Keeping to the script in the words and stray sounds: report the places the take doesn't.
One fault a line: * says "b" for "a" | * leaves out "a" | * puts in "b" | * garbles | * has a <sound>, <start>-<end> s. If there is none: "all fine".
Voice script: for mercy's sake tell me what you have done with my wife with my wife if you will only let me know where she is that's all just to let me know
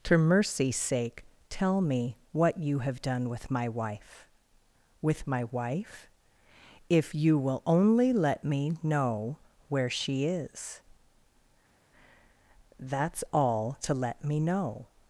* leaves out "just"